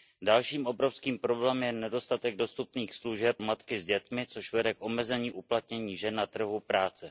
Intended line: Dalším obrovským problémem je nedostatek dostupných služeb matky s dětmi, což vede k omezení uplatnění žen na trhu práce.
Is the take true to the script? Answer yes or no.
yes